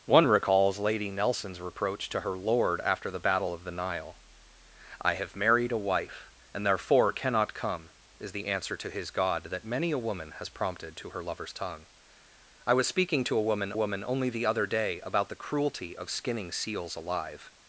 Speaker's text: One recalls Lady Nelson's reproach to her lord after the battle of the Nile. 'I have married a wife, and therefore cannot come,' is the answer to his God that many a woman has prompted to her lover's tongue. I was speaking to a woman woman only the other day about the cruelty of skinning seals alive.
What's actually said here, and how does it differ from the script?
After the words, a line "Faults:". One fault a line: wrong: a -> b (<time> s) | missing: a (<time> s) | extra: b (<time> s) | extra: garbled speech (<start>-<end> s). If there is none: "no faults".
One recalls Lady Nelson's reproach to her lord after the battle of the Nile. 'I have married a wife, and therefore cannot come,' is the answer to his God that many a woman has prompted to her lover's tongue. I was speaking to a woman woman only the other day about the cruelty of skinning seals alive.
Faults:
no faults